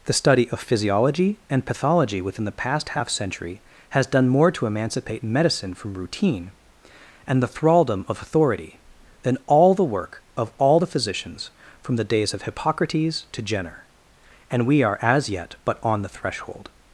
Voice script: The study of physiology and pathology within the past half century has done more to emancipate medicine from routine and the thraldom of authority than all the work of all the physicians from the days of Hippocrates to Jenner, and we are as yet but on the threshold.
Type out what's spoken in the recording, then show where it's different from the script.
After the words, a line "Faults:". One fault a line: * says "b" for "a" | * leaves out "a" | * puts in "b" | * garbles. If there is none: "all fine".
The study of physiology and pathology within the past half century has done more to emancipate medicine from routine and the thraldom of authority than all the work of all the physicians from the days of Hippocrates to Jenner, and we are as yet but on the threshold.
Faults:
all fine